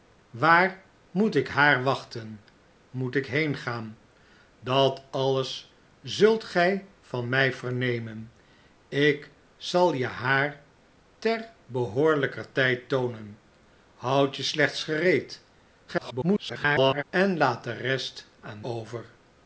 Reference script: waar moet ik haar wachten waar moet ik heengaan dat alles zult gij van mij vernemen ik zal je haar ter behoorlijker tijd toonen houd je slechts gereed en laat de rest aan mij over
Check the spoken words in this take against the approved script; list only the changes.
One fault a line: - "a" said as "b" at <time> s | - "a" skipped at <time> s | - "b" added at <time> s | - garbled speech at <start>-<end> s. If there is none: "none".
- "waar" skipped at 2.4 s
- garbled speech at 15.9-17.0 s
- "mij" skipped at 18.6 s